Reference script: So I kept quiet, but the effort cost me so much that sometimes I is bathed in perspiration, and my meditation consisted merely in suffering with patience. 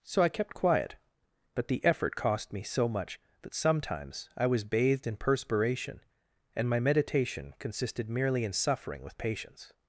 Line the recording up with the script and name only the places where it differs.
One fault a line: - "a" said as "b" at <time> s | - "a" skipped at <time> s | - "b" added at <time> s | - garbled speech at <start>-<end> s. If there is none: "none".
- "is" said as "was" at 4.5 s